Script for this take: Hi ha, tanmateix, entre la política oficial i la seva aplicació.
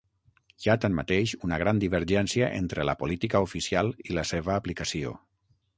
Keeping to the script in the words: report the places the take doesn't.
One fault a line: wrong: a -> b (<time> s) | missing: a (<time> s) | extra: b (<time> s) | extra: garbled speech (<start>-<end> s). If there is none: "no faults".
extra: una gran divergència (1.5 s)